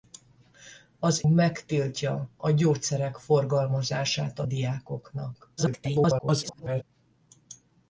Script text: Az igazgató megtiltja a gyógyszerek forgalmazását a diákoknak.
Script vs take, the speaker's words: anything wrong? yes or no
yes